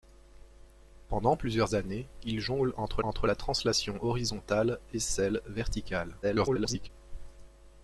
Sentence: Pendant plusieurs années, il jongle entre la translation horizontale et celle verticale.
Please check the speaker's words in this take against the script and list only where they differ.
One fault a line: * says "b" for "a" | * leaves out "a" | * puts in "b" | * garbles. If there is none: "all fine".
* puts in "entre"
* garbles